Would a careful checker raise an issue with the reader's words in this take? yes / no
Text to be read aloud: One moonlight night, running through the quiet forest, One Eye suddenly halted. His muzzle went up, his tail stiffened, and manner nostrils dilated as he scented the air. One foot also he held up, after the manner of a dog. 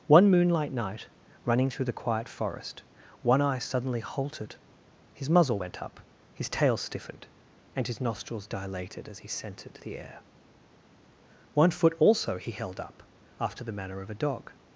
yes